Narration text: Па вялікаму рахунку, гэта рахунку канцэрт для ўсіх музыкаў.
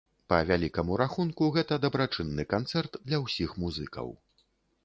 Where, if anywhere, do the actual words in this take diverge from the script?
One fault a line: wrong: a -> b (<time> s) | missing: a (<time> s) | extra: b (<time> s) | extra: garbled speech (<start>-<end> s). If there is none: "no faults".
wrong: рахунку -> дабрачынны (1.9 s)